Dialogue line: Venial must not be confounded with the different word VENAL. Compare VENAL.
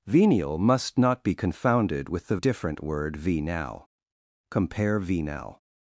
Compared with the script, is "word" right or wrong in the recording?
right